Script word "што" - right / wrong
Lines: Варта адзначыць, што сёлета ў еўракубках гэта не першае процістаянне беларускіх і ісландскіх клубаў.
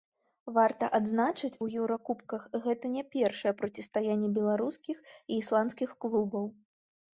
wrong